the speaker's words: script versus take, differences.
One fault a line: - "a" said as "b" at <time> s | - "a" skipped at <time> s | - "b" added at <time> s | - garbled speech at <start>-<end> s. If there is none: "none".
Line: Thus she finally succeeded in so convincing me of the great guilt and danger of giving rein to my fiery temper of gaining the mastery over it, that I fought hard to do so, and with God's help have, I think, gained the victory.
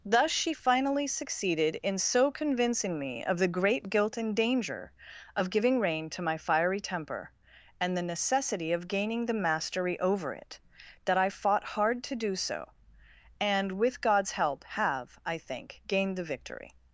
- "and the necessity" added at 7.8 s